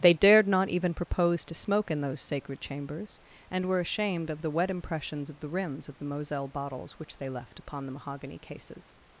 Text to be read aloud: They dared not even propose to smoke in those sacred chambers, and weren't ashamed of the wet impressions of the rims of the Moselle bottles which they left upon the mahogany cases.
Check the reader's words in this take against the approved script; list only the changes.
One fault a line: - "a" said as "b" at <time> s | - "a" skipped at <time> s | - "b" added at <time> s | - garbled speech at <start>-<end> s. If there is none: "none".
- "weren't" said as "were" at 3.7 s